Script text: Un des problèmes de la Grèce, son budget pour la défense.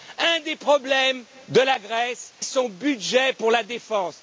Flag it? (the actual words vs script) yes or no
no